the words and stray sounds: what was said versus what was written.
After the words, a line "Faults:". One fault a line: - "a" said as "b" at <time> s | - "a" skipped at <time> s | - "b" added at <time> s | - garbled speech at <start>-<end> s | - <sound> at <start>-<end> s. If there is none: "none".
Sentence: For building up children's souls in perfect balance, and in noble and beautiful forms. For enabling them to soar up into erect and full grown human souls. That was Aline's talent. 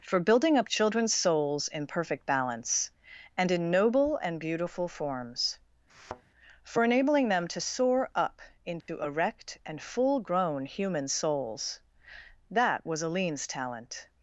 For building up children's souls in perfect balance, and in noble and beautiful forms. For enabling them to soar up into erect and full grown human souls. That was Aline's talent.
Faults:
- thud at 5.9-6.2 s
- dropout at 8.8-8.9 s